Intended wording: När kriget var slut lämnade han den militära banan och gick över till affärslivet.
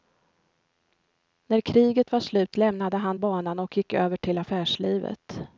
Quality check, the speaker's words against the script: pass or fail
fail